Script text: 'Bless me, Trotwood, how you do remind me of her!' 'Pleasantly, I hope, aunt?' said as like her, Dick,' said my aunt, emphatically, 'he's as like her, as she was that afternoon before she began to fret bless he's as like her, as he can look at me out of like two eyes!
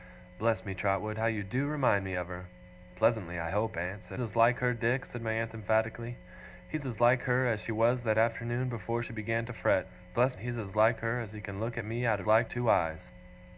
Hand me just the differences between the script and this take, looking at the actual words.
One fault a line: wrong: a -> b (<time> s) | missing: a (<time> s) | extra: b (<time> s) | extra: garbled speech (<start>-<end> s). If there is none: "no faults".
no faults